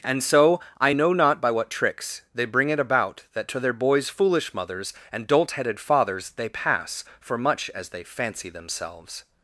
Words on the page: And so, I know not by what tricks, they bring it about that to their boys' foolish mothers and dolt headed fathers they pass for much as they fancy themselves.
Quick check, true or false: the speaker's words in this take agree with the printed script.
true